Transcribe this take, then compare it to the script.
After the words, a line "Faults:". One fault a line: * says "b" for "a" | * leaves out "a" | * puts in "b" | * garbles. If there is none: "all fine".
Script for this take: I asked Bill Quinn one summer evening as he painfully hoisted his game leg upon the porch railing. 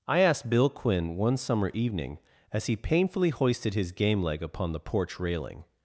I asked Bill Quinn one summer evening as he painfully hoisted his game leg upon the porch railing.
Faults:
all fine